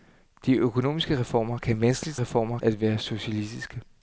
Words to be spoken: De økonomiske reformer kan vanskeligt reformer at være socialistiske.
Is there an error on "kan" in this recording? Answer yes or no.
no